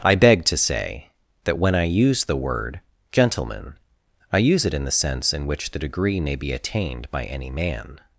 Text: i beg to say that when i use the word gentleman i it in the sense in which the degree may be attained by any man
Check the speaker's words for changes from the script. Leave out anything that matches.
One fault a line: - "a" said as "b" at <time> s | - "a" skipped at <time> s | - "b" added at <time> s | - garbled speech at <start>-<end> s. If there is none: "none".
- "use" added at 4.4 s